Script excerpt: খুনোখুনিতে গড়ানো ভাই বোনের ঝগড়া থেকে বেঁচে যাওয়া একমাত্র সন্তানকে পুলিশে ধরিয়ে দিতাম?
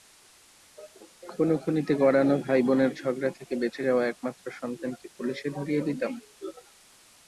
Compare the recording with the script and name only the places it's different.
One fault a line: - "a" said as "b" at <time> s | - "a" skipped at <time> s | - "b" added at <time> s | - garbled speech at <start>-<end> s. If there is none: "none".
none